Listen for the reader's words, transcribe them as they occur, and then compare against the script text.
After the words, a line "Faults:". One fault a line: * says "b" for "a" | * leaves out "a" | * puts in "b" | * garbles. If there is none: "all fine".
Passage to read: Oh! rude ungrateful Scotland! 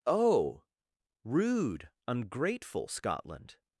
Oh! rude ungrateful Scotland!
Faults:
all fine